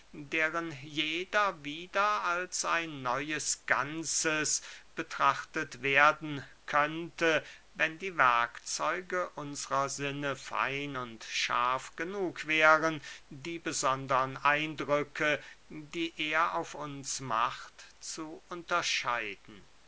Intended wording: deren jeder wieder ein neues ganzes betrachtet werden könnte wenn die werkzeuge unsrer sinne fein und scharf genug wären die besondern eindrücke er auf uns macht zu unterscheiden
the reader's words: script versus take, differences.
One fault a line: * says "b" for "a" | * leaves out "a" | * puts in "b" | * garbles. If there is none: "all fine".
* puts in "als"
* puts in "die"